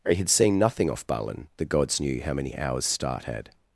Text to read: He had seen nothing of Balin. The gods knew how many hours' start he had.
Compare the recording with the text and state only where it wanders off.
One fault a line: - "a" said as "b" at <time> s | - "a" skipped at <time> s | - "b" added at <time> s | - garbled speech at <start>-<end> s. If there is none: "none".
- "of" said as "off" at 0.9 s
- "he" skipped at 3.2 s